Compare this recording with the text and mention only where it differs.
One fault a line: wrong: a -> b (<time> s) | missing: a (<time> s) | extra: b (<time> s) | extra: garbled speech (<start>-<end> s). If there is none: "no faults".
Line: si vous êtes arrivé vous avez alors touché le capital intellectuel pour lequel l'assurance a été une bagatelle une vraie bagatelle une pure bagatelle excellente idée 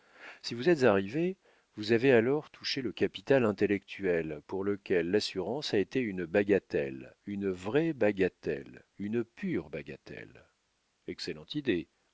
no faults